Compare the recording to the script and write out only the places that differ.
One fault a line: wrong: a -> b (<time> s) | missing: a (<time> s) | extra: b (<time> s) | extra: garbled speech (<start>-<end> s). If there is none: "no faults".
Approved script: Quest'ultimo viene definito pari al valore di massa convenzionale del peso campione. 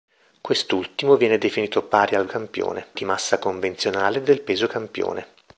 wrong: valore -> campione (2.3 s)